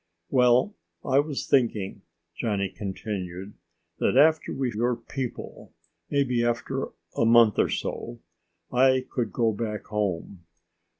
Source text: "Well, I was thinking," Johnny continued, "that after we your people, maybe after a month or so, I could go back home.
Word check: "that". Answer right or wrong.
right